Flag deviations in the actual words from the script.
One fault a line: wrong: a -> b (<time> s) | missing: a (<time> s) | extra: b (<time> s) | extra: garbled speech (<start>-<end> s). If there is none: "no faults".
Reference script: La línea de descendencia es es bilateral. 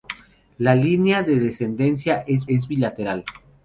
no faults